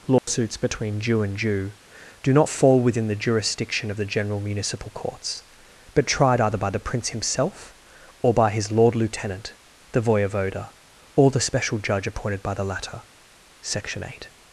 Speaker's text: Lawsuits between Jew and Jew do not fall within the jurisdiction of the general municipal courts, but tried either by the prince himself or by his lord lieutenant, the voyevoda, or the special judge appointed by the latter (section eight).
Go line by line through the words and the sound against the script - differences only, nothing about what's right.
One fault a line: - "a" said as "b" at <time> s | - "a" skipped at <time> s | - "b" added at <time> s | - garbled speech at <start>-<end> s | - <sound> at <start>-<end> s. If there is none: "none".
- dropout at 0.2-0.3 s